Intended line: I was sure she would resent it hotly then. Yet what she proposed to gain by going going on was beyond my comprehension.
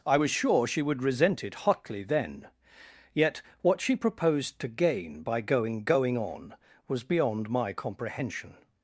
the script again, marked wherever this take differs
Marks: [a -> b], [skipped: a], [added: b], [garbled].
I was sure she would resent it hotly then. Yet what she proposed to gain by going going on was beyond my comprehension.